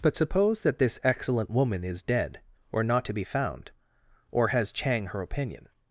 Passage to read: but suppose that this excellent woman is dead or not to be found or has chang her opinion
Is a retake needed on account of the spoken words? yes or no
no